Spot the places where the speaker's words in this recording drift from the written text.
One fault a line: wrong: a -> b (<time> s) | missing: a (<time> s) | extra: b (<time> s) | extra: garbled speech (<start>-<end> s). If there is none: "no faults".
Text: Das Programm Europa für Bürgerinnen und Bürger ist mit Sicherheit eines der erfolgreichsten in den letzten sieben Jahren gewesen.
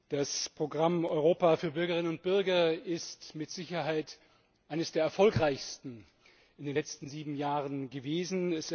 no faults